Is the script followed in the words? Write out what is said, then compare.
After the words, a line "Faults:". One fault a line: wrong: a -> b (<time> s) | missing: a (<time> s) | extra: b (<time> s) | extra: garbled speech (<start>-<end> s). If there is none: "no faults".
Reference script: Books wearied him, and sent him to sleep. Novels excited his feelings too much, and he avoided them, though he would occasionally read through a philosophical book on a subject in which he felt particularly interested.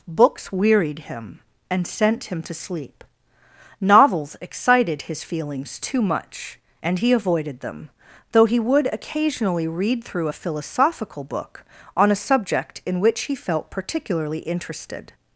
Books wearied him, and sent him to sleep. Novels excited his feelings too much, and he avoided them, though he would occasionally read through a philosophical book on a subject in which he felt particularly interested.
Faults:
no faults